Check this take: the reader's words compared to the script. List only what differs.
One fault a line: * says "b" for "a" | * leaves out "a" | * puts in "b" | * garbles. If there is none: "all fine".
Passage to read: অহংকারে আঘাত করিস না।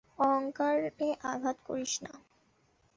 all fine